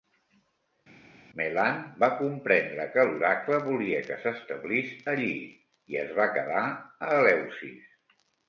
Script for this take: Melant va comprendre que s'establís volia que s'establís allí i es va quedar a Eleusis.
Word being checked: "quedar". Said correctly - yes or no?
yes